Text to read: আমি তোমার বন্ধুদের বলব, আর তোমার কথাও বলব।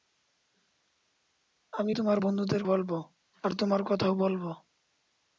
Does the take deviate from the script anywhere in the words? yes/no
no